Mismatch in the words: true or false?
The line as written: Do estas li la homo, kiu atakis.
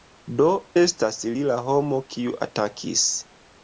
false